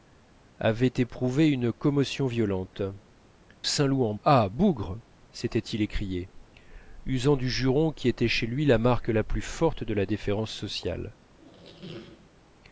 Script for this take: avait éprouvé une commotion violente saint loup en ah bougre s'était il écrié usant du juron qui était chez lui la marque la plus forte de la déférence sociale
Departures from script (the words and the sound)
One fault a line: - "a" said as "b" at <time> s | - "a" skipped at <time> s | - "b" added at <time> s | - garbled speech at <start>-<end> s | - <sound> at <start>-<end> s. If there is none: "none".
- squeak at 11.3-12.3 s